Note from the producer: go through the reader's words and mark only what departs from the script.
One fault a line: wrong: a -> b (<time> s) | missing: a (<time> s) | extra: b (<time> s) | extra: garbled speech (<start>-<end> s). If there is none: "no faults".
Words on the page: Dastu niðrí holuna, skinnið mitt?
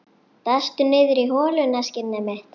no faults